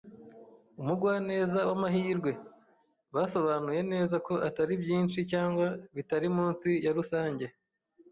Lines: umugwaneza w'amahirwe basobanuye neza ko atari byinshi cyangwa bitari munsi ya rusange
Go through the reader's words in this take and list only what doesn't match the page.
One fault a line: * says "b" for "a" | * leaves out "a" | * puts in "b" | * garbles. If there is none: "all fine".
all fine